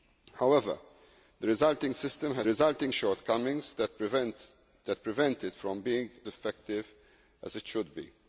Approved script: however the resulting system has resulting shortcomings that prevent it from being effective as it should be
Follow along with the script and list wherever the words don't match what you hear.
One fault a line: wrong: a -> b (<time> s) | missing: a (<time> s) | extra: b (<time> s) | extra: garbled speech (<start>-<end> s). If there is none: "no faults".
no faults